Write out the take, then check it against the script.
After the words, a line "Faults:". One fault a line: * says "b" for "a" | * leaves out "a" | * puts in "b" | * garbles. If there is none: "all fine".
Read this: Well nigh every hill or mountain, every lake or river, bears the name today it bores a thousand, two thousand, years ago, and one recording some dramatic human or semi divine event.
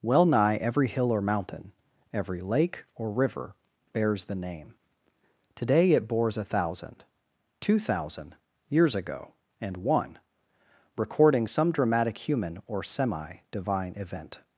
Well nigh every hill or mountain, every lake or river, bears the name today it bores a thousand, two thousand, years ago, and one recording some dramatic human or semi divine event.
Faults:
all fine